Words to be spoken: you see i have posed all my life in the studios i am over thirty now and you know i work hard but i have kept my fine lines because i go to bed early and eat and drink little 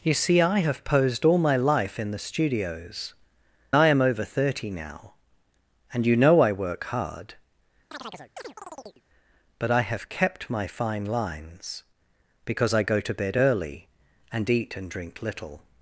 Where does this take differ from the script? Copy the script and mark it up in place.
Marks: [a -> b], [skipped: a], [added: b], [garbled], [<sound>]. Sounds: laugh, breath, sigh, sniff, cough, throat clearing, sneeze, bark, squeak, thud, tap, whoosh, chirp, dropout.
you see i have posed all my life in the studios i am over thirty now and you know i work hard [chirp] but i have kept my fine lines because i go to bed early and eat and drink little